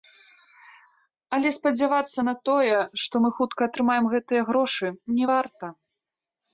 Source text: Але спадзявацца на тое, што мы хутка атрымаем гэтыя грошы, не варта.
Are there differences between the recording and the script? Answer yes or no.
no